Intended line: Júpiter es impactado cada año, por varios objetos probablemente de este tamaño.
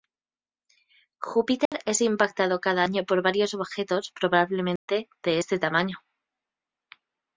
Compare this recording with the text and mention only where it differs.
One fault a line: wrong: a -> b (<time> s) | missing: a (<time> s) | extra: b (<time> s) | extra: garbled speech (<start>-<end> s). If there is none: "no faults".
no faults